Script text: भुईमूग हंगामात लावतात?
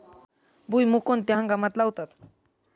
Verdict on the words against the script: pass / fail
fail